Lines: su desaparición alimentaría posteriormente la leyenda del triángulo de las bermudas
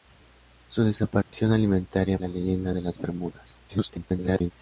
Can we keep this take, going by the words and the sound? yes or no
no